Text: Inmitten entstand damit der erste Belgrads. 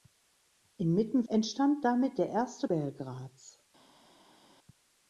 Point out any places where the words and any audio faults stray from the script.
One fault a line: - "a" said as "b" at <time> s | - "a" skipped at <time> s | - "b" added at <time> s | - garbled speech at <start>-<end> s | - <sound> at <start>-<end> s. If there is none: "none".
none